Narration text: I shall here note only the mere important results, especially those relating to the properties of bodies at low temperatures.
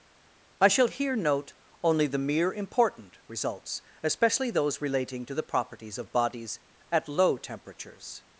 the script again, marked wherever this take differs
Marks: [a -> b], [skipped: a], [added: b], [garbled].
I shall here note only the mere important results, especially those relating to the properties of bodies at low temperatures.